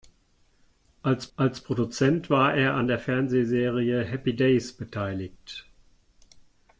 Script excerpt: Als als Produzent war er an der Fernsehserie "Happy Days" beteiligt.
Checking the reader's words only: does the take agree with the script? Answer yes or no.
yes